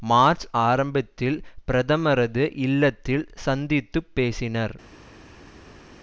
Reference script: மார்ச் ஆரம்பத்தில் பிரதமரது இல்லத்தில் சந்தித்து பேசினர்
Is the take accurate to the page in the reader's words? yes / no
yes